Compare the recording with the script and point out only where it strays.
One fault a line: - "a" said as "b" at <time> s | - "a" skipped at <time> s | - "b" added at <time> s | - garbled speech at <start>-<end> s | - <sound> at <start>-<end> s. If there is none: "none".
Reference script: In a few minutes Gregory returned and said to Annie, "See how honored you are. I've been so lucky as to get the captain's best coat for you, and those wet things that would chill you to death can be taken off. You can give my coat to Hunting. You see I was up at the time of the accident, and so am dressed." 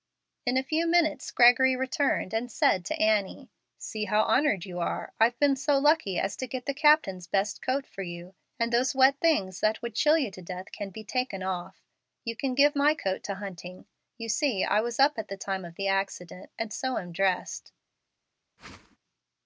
- whoosh at 18.6-19.0 s